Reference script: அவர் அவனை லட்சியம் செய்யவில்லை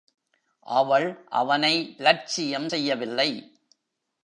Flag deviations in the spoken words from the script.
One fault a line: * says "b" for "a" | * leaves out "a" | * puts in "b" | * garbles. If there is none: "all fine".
* says "அவள்" for "அவர்"